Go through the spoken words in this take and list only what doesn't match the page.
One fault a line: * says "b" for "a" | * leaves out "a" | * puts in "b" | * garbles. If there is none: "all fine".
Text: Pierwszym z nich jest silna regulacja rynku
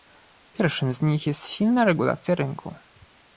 all fine